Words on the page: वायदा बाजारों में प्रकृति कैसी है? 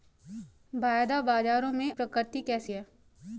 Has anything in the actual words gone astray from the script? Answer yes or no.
no